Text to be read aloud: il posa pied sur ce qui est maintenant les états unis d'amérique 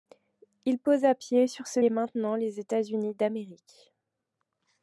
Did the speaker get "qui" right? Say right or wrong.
wrong